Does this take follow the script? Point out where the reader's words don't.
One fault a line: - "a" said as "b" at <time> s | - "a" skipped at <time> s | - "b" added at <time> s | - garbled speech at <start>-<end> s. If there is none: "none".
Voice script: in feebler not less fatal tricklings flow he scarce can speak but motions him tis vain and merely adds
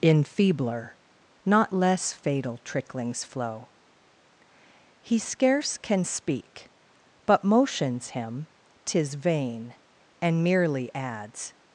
none